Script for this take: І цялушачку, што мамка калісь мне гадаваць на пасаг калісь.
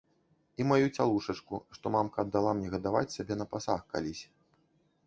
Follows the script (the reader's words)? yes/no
no